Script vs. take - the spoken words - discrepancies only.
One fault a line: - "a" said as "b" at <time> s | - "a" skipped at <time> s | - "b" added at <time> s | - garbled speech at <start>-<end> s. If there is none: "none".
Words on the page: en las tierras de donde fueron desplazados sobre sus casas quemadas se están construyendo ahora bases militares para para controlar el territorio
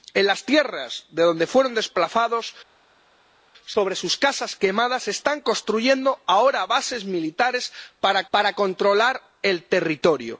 none